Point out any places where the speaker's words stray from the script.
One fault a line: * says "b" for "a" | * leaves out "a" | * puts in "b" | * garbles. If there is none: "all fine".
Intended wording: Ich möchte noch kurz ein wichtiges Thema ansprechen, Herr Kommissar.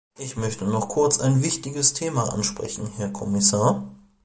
all fine